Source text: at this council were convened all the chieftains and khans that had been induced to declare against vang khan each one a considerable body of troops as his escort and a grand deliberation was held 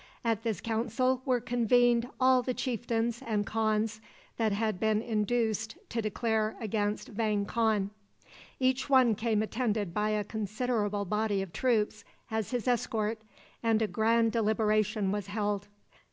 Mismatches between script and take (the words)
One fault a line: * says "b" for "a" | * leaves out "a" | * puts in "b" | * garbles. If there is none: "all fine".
* puts in "came attended by"